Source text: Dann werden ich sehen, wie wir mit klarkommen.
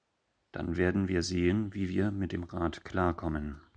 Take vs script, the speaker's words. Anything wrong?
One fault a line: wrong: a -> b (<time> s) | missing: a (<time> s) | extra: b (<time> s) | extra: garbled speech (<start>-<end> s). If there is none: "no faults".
wrong: ich -> wir (1.1 s)
extra: dem Rat (2.3 s)